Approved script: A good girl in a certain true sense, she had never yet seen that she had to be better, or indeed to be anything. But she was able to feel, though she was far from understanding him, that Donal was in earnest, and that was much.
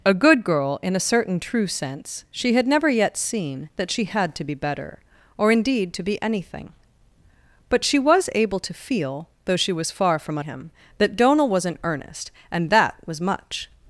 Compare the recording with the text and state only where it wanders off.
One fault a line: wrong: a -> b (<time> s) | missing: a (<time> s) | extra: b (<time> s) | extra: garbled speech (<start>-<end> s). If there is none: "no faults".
missing: understanding (10.4 s)